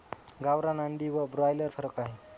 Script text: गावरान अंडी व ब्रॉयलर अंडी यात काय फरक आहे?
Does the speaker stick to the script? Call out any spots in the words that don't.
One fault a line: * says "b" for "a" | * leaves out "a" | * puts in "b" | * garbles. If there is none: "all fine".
* leaves out "अंडी यात काय"